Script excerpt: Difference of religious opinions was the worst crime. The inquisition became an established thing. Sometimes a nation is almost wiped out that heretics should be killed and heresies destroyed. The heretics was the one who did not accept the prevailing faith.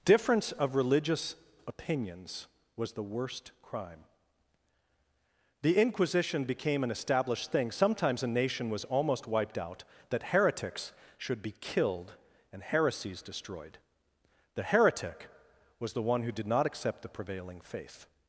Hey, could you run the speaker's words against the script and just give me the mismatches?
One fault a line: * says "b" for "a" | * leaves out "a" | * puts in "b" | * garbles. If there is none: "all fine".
* says "was" for "is"
* says "heretic" for "heretics"